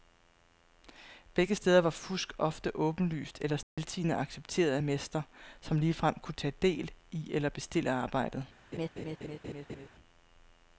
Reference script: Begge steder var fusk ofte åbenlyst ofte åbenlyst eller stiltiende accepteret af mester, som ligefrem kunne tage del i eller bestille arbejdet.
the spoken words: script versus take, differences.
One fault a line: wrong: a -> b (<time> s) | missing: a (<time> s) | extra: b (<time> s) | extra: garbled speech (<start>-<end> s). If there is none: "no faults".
missing: ofte åbenlyst (3.4 s)